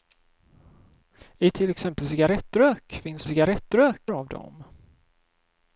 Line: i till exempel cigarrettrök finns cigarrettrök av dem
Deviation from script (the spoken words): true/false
false